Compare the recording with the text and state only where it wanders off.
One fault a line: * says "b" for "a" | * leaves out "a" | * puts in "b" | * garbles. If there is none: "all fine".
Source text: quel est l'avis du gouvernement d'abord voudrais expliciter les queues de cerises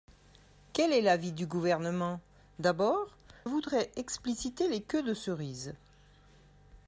all fine